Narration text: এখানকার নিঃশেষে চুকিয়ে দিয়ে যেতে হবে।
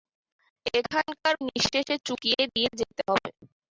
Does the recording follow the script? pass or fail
pass